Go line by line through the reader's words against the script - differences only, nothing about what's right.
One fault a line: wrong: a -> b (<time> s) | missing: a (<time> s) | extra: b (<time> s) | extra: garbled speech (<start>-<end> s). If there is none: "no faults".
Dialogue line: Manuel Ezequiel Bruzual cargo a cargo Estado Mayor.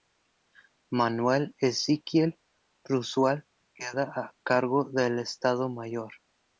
wrong: cargo -> queda (3.8 s)
extra: del (4.8 s)